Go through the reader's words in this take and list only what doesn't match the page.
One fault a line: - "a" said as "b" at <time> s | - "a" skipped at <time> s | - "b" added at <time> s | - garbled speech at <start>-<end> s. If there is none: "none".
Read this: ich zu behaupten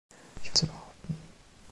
none